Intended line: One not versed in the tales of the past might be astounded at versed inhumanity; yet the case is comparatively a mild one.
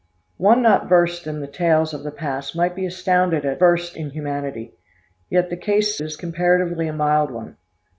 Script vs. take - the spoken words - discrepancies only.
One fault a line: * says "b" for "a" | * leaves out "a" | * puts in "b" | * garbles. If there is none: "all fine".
all fine